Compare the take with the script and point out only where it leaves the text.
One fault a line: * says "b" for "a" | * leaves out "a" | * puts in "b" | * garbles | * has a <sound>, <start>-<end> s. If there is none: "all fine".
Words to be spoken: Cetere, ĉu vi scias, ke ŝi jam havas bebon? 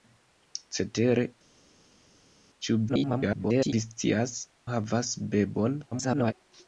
* garbles
* leaves out "ke ŝi jam"
* garbles